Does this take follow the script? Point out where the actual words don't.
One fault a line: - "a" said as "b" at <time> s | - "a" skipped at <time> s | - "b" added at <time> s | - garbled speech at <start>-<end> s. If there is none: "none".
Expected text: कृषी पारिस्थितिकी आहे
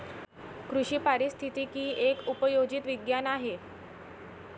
- "एक उपयोजित विज्ञान" added at 2.0 s